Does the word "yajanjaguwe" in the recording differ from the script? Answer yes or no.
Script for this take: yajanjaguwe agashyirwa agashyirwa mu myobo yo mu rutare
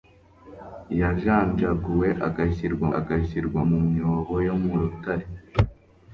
no